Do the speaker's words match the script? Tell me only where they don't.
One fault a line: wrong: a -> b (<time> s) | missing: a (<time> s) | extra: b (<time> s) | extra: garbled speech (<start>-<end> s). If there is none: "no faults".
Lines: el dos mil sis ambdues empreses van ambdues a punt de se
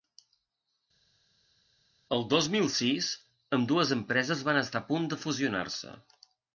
wrong: ambdues -> estar (4.6 s)
extra: fusionar (5.2 s)